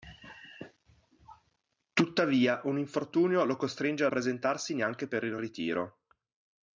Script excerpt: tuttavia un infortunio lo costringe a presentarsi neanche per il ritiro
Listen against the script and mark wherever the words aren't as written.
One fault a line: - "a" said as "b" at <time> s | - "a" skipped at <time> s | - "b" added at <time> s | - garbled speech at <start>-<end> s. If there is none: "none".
none